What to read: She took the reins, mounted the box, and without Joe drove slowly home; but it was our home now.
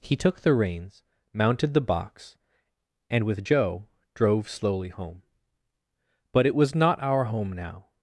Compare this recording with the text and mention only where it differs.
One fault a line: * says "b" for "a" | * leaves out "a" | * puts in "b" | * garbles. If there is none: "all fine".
* says "He" for "She"
* says "with" for "without"
* puts in "not"